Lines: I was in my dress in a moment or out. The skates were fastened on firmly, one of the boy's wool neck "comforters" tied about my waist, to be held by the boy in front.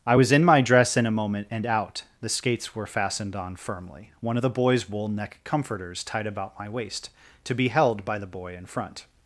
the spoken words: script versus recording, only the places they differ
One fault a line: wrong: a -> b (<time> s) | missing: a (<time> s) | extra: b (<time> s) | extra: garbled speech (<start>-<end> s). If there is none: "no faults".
wrong: or -> and (1.5 s)